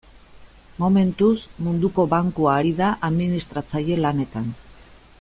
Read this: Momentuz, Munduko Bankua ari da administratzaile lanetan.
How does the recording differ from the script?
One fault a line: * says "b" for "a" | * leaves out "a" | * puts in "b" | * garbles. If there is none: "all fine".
all fine